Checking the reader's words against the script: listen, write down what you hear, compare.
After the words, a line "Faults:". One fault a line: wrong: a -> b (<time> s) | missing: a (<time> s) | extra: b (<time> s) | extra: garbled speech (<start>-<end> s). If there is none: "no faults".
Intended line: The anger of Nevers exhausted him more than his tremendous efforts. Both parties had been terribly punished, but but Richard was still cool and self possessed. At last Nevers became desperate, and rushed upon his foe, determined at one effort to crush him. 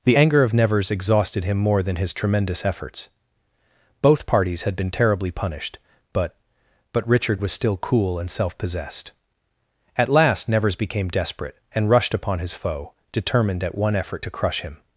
The anger of Nevers exhausted him more than his tremendous efforts. Both parties had been terribly punished, but but Richard was still cool and self possessed. At last Nevers became desperate, and rushed upon his foe, determined at one effort to crush him.
Faults:
no faults